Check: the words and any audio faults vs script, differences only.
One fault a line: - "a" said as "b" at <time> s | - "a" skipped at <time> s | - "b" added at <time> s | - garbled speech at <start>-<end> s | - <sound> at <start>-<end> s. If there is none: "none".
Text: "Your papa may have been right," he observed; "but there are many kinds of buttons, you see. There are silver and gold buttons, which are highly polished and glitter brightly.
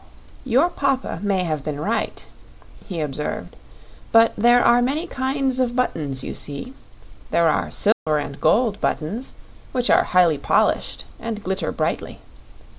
- dropout at 7.9-8.1 s